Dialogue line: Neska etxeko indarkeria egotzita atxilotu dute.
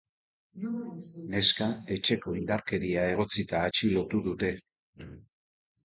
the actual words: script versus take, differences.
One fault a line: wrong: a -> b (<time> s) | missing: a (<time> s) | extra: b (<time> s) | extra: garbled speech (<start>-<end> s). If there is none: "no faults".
no faults